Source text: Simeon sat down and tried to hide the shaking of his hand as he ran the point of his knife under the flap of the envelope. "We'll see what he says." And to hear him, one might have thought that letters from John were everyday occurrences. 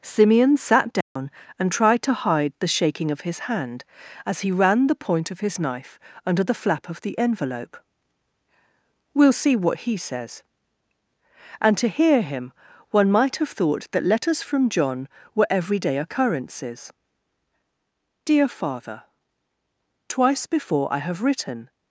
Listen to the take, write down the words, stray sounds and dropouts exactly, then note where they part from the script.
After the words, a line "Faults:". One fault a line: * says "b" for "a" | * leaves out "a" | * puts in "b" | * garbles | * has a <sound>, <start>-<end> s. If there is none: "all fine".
Simeon sat down and tried to hide the shaking of his hand as he ran the point of his knife under the flap of the envelope. "We'll see what he says." And to hear him, one might have thought that letters from John were everyday occurrences. DEAR FATHER: Twice before I have written
Faults:
* has a dropout, 1.0-1.2 s
* puts in "DEAR FATHER Twice before I have written"